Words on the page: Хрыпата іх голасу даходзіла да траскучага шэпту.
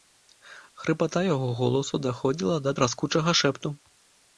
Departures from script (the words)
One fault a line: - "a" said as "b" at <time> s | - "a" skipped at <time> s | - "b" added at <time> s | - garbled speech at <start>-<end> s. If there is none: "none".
- "іх" said as "яго" at 1.3 s